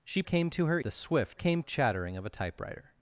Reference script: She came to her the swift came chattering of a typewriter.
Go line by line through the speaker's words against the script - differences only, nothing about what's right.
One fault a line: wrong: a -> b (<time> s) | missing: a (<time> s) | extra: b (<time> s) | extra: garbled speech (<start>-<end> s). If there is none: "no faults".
no faults